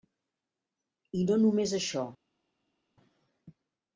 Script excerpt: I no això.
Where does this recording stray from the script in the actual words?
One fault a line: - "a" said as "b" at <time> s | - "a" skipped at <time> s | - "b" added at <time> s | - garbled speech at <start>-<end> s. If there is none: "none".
- "només" added at 1.4 s